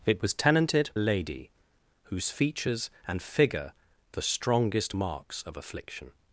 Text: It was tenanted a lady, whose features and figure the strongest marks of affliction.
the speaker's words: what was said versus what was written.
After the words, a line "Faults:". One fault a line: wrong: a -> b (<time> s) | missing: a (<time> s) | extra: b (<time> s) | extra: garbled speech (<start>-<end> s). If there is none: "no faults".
It was tenanted a lady, whose features and figure the strongest marks of affliction.
Faults:
no faults